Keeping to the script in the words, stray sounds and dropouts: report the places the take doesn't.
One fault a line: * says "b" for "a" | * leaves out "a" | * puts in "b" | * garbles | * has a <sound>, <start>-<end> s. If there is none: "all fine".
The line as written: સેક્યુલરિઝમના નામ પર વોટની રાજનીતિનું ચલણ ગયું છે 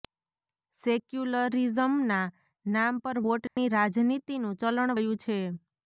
* has a dropout, 3.5-3.6 s